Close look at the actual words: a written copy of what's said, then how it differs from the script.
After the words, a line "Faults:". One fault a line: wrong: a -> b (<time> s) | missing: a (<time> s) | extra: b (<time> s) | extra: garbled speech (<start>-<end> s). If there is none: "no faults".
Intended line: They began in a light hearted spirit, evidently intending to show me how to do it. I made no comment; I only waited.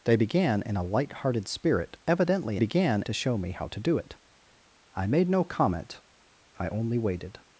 They began in a light hearted spirit, evidently began to show me how to do it. I made no comment; I only waited.
Faults:
wrong: intending -> began (2.6 s)